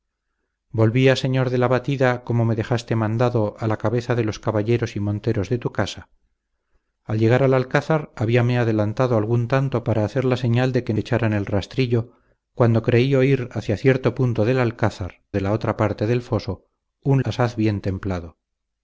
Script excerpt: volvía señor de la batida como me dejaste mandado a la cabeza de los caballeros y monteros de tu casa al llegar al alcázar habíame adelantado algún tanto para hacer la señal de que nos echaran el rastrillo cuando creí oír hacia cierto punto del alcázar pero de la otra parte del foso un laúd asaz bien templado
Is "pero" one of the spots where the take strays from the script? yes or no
yes